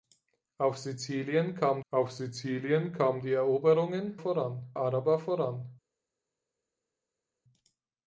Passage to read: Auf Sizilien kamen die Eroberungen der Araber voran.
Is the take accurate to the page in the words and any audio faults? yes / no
no